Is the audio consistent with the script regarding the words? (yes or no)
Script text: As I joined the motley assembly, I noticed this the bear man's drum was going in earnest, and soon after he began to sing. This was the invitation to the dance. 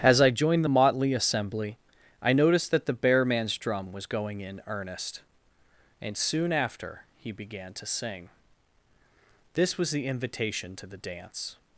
no